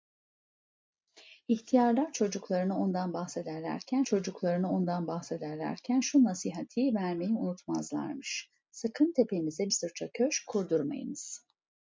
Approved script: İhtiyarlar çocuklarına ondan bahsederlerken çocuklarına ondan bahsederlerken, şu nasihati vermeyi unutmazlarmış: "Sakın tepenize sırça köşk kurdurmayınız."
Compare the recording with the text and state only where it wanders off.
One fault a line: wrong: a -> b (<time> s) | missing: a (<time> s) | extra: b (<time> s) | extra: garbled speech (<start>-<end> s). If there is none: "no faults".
no faults